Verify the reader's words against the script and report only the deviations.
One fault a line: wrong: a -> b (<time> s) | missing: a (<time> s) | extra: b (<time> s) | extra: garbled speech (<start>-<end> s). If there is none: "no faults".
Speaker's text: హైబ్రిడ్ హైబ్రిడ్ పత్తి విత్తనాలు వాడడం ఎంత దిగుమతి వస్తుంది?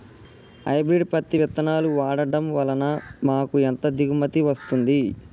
missing: హైబ్రిడ్ (1.1 s)
extra: వలన మాకు (2.5 s)